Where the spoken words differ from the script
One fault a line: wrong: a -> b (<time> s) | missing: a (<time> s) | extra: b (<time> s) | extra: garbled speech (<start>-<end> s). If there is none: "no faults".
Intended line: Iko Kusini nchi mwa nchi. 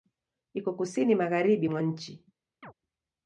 wrong: nchi -> magharibi (1.1 s)